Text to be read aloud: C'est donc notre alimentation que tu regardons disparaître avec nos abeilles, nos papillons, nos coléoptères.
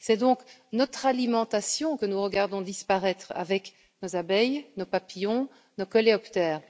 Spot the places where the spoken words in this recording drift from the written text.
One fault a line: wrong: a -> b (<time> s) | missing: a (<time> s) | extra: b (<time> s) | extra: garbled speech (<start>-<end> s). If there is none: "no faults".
wrong: tu -> nous (2.0 s)